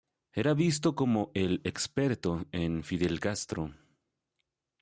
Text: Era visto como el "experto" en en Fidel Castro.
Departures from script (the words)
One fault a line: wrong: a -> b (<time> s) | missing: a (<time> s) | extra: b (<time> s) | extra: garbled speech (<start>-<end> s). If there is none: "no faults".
missing: en (2.8 s)